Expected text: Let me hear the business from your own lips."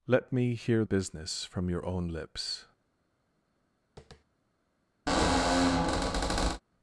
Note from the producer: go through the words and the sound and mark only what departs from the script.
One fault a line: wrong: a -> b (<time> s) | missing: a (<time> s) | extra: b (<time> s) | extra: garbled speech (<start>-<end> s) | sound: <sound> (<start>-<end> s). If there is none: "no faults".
missing: the (0.8 s)
sound: tap (4.0-4.2 s)
sound: squeak (5.1-6.6 s)